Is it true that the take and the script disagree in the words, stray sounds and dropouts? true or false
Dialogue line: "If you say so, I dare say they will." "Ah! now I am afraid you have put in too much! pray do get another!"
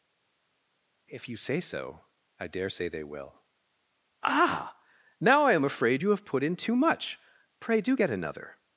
false